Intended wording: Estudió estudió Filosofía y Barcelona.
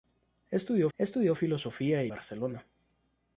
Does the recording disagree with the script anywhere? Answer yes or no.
no